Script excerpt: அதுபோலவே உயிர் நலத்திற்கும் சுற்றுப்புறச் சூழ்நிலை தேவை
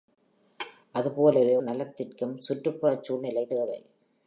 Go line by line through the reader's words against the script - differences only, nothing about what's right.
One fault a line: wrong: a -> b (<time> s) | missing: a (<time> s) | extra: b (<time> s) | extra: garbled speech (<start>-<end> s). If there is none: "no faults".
missing: உயிர் (1.6 s)